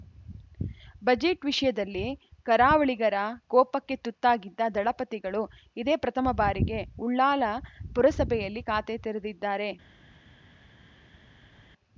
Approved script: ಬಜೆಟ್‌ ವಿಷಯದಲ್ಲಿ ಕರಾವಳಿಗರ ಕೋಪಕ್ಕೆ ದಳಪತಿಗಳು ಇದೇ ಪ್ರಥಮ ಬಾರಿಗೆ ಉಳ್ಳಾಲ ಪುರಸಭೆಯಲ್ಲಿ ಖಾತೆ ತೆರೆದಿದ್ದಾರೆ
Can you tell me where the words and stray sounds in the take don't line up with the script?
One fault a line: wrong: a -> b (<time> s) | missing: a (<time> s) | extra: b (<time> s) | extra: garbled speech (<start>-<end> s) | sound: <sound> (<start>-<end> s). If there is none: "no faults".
extra: ತುತ್ತಾಗಿದ್ದ (4.0 s)